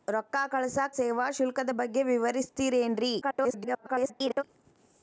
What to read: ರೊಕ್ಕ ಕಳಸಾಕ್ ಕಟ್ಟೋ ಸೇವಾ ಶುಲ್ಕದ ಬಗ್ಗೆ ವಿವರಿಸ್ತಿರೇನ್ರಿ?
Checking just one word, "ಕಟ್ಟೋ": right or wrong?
wrong